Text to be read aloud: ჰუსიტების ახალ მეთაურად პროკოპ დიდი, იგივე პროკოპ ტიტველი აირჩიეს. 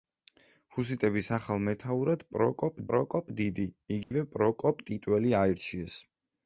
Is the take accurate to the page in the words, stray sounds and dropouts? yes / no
no